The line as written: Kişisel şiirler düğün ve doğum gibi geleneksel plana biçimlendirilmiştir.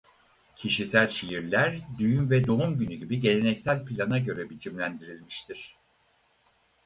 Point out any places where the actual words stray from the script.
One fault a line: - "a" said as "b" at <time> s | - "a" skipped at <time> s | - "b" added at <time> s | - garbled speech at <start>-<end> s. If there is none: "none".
- "günü" added at 2.8 s
- "göre" added at 4.2 s